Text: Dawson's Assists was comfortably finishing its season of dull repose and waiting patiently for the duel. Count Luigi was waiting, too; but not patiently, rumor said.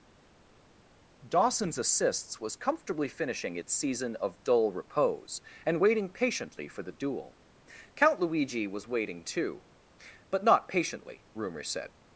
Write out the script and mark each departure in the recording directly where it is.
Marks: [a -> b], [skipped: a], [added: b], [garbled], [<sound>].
Dawson's Assists was comfortably finishing its season of dull repose and waiting patiently for the duel. Count Luigi was waiting, too; but not patiently, rumor said.